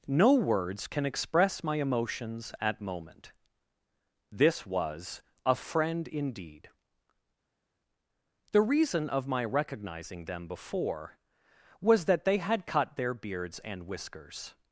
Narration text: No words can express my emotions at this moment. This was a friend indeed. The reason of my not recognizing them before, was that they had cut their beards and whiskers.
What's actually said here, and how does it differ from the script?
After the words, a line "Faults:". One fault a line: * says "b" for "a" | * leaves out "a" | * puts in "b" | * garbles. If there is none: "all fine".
No words can express my emotions at moment. This was a friend indeed. The reason of my recognizing them before, was that they had cut their beards and whiskers.
Faults:
* leaves out "this"
* leaves out "not"